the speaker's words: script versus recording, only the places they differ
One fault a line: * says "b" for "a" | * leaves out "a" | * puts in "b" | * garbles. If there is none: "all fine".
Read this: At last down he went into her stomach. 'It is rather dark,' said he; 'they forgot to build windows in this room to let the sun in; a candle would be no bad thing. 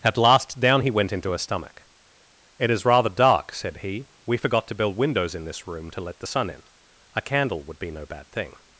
* says "we" for "they"